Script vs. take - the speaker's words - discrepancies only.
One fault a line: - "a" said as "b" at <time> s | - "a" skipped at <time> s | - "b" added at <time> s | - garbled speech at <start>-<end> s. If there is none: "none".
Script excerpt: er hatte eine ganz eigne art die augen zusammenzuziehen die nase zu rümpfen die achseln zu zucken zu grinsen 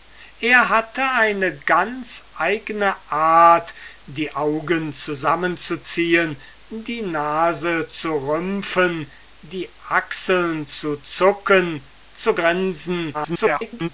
- garbled speech at 13.1-13.9 s